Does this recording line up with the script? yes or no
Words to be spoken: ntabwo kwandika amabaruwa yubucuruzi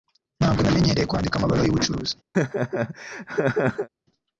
no